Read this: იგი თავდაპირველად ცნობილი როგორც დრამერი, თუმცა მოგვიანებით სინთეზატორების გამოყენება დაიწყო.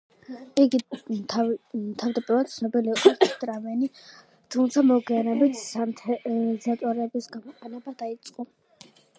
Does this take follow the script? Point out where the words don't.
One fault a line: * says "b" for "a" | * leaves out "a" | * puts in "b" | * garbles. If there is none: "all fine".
all fine